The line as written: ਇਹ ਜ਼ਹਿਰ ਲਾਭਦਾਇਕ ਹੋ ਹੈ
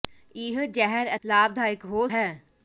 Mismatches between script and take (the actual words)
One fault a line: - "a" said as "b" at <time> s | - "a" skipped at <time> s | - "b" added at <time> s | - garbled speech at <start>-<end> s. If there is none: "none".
none